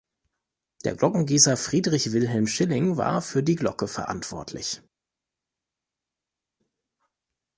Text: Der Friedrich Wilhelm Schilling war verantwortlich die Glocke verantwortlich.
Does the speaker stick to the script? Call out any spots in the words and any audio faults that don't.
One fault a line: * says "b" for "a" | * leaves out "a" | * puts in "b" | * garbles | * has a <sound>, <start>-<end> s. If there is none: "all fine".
* puts in "Glockengießer"
* says "für" for "verantwortlich"